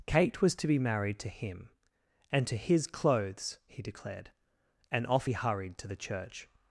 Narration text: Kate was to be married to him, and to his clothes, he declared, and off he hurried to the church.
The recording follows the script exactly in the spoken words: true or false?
true